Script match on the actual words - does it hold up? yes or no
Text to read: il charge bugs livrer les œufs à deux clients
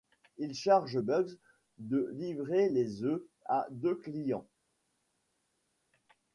no